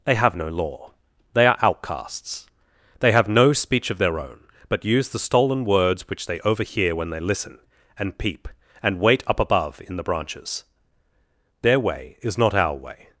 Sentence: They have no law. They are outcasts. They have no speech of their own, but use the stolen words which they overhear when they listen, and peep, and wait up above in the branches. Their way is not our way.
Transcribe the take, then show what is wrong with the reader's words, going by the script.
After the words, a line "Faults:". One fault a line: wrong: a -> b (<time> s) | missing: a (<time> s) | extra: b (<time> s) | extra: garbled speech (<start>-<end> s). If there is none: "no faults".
They have no law. They are outcasts. They have no speech of their own, but use the stolen words which they overhear when they listen, and peep, and wait up above in the branches. Their way is not our way.
Faults:
no faults